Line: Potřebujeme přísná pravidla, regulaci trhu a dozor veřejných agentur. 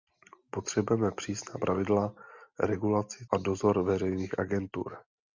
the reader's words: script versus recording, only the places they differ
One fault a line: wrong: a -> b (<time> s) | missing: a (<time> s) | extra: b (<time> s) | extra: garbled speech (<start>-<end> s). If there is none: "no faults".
missing: trhu (3.2 s)